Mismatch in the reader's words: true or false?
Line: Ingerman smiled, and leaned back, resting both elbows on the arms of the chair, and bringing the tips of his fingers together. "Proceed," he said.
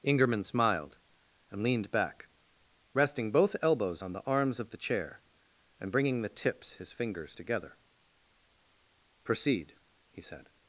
true